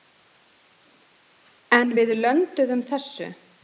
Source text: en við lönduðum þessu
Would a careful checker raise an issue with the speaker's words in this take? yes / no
no